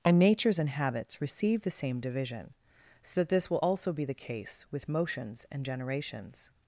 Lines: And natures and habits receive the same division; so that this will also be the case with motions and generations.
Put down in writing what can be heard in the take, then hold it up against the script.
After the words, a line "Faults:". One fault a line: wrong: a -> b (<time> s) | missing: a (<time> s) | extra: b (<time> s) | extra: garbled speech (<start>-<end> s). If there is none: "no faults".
And natures and habits receive the same division; so that this will also be the case with motions and generations.
Faults:
no faults